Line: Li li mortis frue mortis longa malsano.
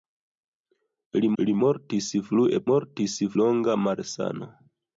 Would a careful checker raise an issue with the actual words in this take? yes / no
no